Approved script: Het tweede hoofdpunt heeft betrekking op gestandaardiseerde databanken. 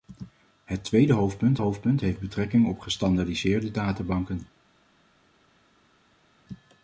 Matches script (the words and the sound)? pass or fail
fail